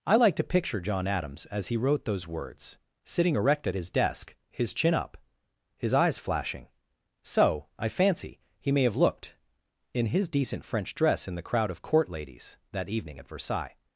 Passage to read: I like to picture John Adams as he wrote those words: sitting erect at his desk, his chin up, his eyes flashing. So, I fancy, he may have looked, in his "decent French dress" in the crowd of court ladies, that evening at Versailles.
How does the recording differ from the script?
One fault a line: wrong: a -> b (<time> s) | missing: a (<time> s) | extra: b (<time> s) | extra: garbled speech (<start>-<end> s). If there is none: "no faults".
no faults